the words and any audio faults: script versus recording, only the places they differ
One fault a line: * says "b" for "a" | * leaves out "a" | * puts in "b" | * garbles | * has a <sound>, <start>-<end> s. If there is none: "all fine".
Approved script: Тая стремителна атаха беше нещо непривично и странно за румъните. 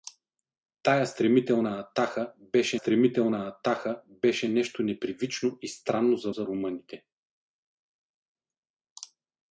* puts in "стремителна атаха беше"
* puts in "за"